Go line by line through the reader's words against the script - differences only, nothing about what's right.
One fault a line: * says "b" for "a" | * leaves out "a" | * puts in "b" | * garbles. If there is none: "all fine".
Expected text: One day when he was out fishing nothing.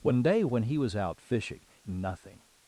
all fine